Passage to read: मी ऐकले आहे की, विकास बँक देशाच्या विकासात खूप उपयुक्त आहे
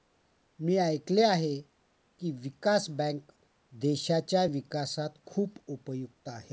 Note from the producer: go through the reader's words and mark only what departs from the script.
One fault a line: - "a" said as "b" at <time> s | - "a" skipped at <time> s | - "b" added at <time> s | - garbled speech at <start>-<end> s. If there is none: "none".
none